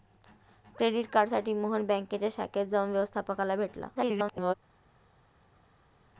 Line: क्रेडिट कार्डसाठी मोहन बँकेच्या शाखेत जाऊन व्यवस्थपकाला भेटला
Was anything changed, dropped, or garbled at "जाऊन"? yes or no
no